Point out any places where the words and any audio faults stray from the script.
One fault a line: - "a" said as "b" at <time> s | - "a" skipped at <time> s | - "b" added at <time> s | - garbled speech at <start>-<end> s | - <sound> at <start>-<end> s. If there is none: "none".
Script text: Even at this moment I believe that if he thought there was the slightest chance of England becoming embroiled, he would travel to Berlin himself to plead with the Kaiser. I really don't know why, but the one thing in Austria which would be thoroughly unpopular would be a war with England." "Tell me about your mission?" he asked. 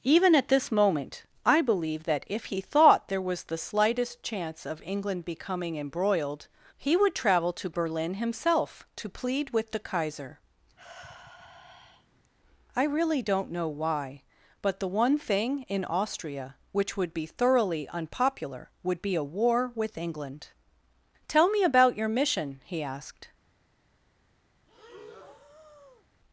- sigh at 10.8-12.3 s
- breath at 24.7-26.1 s